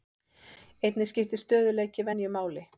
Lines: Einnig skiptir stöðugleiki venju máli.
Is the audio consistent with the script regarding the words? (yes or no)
yes